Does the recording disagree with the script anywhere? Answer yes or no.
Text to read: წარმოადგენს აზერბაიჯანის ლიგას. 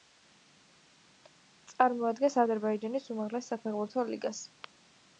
yes